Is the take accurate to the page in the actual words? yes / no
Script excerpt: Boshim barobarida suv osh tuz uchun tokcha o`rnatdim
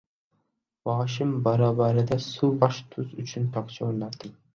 yes